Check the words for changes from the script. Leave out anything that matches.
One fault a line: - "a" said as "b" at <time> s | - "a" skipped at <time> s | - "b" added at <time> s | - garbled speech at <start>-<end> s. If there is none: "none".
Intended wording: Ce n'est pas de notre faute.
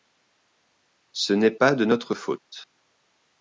none